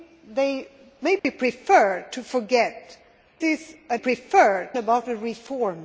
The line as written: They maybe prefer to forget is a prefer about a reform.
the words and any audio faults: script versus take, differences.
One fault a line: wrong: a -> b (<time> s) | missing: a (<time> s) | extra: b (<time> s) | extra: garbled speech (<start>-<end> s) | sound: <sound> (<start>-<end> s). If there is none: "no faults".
sound: dropout (1.2-1.2 s)